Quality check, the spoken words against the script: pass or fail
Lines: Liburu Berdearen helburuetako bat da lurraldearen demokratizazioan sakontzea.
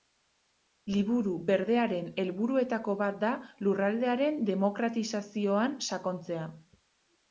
pass